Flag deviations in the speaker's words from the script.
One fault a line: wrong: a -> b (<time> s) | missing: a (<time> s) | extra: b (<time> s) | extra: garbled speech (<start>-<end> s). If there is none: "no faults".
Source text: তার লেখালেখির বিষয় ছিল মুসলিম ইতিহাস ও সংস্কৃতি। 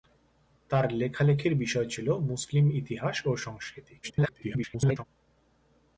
extra: garbled speech (4.0-5.0 s)